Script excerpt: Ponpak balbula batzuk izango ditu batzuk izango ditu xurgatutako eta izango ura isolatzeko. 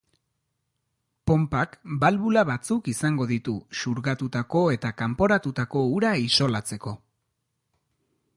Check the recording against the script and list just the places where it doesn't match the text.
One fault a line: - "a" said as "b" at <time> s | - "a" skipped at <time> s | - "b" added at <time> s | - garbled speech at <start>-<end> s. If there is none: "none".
- "batzuk izango ditu" skipped at 3.6 s
- "izango" said as "kanporatutako" at 5.0 s